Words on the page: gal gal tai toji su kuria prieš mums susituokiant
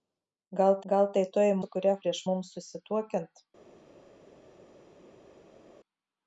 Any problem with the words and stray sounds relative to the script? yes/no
no